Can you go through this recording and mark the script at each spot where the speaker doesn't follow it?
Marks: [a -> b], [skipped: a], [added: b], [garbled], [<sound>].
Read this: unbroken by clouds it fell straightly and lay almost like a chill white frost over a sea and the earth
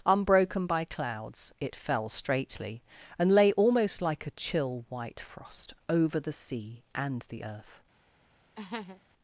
unbroken by clouds it fell straightly and lay almost like a chill white frost over [a -> the] sea and the earth [laugh]